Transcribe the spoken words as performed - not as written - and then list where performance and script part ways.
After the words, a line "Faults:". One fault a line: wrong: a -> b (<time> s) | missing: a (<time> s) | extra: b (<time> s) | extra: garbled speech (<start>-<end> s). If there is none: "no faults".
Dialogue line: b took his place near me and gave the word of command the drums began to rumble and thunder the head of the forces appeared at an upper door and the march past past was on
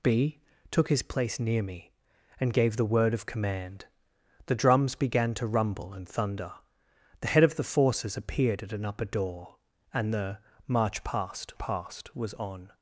b took his place near me and gave the word of command the drums began to rumble and thunder the head of the forces appeared at an upper door and the march past past was on
Faults:
no faults